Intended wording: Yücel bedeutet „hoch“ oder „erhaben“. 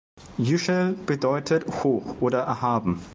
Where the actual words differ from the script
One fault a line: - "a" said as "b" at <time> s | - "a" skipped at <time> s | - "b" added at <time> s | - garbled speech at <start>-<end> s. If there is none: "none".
none